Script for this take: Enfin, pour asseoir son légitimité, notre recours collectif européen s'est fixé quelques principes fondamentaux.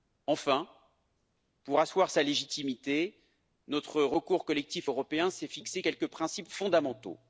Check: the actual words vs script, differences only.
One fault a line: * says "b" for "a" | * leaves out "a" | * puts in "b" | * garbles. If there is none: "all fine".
* says "sa" for "son"